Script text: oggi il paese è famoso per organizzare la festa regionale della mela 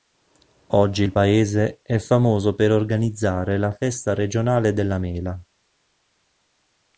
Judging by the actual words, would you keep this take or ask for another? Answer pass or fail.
pass